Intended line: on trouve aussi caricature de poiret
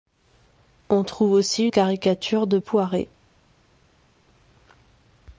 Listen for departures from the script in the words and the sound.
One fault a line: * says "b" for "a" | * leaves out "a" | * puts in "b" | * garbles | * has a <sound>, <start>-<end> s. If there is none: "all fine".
all fine